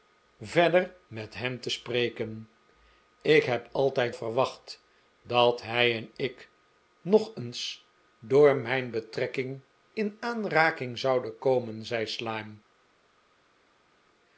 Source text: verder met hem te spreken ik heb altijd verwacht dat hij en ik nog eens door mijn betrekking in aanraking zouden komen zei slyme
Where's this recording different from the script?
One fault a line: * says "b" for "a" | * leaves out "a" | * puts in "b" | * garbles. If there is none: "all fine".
all fine